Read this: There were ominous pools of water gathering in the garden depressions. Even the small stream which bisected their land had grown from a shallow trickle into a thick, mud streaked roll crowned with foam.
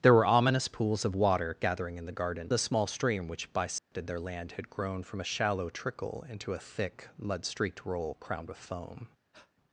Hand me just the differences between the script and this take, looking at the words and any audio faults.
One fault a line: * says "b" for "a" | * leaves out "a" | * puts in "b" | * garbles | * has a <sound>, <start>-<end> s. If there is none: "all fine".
* leaves out "depressions Even"
* has a dropout, 3.8-3.9 s
* has a breath, 9.3-9.5 s